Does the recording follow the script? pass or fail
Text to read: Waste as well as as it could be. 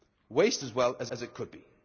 pass